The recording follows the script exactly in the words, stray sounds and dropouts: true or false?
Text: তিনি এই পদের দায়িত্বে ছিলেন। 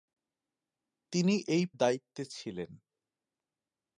false